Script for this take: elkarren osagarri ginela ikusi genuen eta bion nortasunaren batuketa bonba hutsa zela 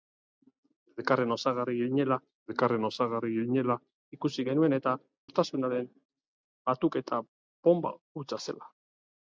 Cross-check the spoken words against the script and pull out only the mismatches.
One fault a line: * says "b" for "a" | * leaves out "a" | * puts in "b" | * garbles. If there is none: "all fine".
* puts in "elkarren osagarri ginela"
* leaves out "bion"